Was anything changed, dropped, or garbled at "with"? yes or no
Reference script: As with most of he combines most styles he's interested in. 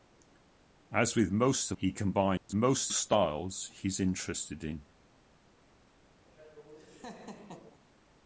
no